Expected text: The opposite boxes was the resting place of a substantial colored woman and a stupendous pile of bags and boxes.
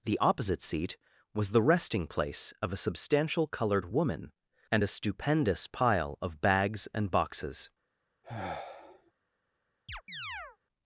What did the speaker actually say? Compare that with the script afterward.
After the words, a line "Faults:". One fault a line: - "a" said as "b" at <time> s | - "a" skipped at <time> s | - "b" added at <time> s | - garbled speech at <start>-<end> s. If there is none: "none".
The opposite seat was the resting place of a substantial colored woman and a stupendous pile of bags and boxes.
Faults:
- "boxes" said as "seat" at 0.6 s